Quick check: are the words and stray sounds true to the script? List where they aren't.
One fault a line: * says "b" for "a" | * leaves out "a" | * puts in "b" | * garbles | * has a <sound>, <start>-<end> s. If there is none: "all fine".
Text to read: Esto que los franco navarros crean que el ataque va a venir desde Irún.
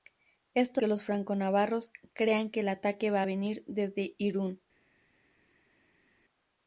all fine